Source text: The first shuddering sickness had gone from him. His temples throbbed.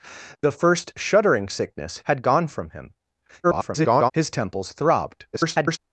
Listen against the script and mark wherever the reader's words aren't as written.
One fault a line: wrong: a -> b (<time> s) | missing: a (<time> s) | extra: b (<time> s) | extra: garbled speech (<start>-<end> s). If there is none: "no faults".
extra: garbled speech (3.4-4.1 s)
extra: garbled speech (5.3-5.8 s)